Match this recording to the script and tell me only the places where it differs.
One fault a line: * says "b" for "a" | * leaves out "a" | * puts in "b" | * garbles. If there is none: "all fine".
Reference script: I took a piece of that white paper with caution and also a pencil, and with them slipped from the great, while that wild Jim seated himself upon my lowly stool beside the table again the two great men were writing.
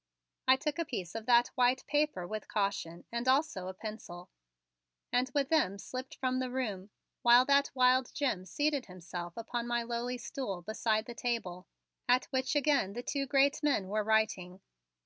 * says "room" for "great"
* puts in "at which"